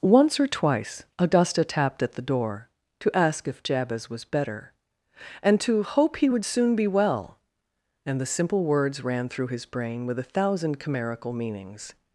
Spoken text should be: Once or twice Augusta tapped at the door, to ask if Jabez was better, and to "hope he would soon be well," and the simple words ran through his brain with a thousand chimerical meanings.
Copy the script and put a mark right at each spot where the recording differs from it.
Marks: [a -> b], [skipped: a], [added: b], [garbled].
Once or twice Augusta tapped at the door, to ask if Jabez was better, and to "hope he would soon be well," and the simple words ran through his brain with a thousand chimerical meanings.